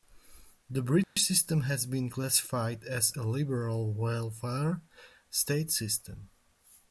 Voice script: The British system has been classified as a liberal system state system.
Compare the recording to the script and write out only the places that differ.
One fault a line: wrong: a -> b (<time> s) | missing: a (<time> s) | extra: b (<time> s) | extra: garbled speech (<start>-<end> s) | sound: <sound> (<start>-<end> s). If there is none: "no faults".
sound: dropout (1.0-1.2 s)
wrong: system -> welfare (3.9 s)